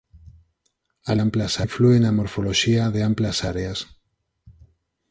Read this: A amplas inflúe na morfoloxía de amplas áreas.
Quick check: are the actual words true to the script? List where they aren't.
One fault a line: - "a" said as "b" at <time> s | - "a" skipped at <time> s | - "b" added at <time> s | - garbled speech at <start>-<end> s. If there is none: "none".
none